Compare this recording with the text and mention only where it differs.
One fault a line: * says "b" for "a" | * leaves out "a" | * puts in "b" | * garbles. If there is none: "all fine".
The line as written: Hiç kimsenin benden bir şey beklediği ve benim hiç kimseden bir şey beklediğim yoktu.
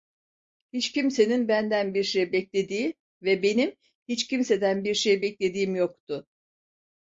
all fine